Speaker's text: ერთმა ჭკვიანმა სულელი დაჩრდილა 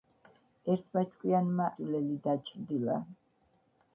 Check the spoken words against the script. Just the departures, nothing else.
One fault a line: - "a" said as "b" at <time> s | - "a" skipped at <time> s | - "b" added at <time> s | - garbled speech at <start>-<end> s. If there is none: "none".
none